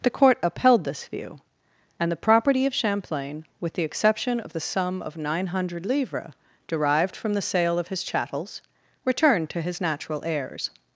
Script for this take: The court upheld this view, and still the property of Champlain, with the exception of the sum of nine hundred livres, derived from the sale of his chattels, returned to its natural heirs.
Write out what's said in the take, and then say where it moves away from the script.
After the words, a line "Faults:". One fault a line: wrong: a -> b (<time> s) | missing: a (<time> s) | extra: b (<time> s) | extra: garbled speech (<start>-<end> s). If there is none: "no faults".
The court upheld this view, and the property of Champlain, with the exception of the sum of nine hundred livres, derived from the sale of his chattels, returned to his natural heirs.
Faults:
missing: still (2.1 s)
wrong: its -> his (9.6 s)